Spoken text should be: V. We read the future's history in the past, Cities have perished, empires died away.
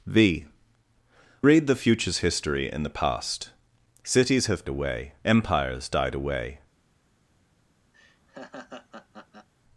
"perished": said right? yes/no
no